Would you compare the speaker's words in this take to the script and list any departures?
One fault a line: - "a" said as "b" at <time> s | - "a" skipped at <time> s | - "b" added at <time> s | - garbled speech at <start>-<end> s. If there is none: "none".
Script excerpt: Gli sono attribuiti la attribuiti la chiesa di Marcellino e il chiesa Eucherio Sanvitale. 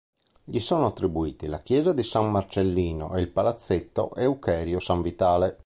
- "attribuiti la" skipped at 1.6 s
- "San" added at 2.0 s
- "chiesa" said as "palazzetto" at 3.3 s